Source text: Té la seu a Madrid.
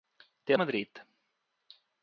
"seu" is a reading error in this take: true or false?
true